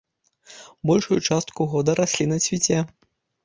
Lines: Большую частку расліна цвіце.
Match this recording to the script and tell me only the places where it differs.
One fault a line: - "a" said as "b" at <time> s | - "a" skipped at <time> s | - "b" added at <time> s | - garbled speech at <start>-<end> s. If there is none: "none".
- "года" added at 1.8 s